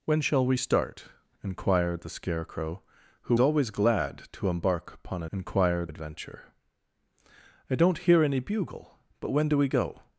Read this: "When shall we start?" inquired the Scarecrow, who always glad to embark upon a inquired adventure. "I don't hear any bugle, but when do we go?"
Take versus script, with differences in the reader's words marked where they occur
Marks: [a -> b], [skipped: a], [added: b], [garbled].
"When shall we start?" inquired the Scarecrow, who always glad to embark upon a inquired adventure. "I don't hear any bugle, but when do we go?"